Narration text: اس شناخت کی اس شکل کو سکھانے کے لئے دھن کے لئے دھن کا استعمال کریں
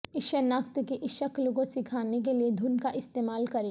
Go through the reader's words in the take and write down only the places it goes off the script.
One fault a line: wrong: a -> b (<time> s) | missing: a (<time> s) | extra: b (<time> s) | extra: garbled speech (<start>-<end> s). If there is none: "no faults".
missing: کے لئے دھن (2.8 s)